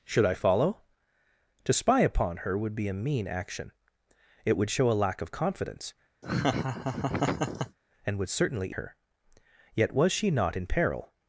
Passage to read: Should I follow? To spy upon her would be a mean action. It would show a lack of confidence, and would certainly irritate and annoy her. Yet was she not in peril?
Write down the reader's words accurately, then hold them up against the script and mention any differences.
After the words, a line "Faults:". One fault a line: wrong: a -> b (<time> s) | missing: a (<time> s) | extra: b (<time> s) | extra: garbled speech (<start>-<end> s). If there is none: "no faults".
Should I follow? To spy upon her would be a mean action. It would show a lack of confidence, and would certainly her. Yet was she not in peril?
Faults:
missing: irritate and annoy (8.7 s)